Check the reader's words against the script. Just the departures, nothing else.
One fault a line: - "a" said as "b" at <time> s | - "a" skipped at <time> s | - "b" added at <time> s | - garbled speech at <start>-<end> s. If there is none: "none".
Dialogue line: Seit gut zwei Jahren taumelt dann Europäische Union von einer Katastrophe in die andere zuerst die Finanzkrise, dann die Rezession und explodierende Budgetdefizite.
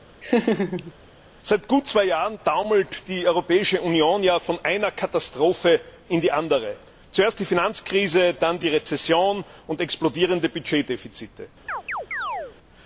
- "dann" said as "die" at 3.1 s